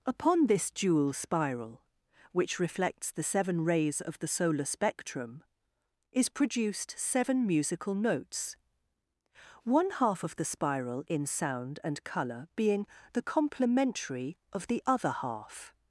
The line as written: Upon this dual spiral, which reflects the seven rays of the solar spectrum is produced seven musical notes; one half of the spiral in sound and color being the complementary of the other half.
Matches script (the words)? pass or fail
pass